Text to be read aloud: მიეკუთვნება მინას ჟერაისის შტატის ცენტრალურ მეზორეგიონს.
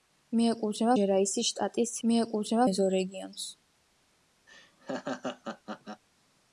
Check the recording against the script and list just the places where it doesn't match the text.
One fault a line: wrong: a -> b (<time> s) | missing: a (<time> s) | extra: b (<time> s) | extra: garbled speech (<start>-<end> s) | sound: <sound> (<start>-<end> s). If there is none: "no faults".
missing: მინას (0.9 s)
wrong: ცენტრალურ -> მიეკუთვნება (2.1 s)
sound: laugh (4.5-6.0 s)